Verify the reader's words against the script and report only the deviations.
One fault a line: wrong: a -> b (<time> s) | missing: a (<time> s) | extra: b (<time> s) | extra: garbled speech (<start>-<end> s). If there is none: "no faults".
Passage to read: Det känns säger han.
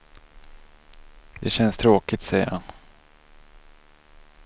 extra: tråkigt (1.8 s)